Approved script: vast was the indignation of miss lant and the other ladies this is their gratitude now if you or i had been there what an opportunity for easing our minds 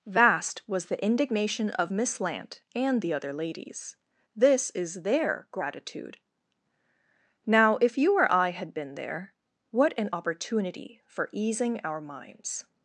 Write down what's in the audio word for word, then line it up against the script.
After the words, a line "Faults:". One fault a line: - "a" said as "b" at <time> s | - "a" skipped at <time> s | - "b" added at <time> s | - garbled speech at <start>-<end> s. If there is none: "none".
vast was the indignation of miss lant and the other ladies this is their gratitude now if you or i had been there what an opportunity for easing our minds
Faults:
none